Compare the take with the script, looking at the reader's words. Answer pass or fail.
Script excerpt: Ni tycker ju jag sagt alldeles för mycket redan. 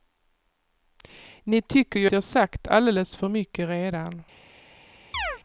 pass